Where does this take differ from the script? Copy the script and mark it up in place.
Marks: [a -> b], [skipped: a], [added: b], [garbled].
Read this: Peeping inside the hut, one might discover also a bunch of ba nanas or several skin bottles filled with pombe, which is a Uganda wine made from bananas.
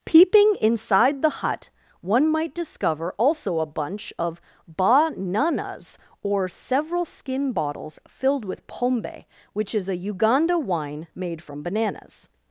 Peeping inside the hut, one might discover also a bunch of ba nanas or several skin bottles filled with pombe, which is a Uganda wine made from bananas.